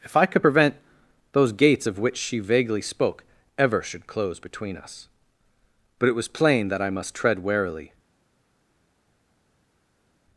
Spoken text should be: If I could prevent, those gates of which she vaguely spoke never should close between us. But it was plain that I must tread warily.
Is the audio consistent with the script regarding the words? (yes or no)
no